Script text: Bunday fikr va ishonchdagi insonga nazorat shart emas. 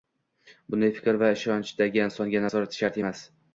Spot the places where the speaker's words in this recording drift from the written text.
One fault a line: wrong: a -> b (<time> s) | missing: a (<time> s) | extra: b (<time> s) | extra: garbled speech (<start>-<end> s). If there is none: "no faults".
no faults